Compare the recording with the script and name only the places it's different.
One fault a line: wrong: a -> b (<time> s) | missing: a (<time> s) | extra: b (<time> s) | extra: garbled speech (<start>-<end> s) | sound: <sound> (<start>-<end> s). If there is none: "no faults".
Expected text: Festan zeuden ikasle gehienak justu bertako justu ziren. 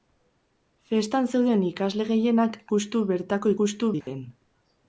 sound: dropout (4.0-4.1 s)